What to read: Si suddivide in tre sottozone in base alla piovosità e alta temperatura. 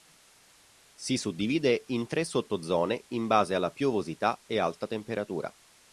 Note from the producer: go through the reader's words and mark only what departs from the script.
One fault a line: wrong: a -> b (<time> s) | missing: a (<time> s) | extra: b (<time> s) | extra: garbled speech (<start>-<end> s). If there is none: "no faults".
no faults